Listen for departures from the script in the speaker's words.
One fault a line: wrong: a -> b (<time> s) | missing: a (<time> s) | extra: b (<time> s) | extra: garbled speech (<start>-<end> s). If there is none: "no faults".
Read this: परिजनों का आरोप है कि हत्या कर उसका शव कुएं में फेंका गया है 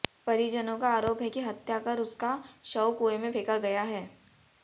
no faults